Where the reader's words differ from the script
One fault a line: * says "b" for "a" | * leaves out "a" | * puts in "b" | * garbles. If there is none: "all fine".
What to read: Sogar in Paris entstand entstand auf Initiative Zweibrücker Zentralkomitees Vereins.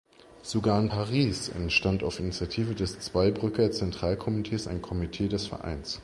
* leaves out "entstand"
* puts in "des"
* puts in "ein Komitee des"